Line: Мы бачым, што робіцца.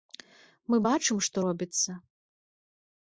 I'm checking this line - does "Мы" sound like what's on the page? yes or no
yes